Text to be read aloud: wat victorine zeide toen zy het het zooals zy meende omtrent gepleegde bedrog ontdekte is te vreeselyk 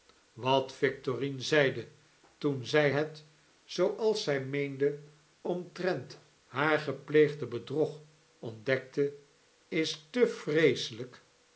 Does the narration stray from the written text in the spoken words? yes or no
yes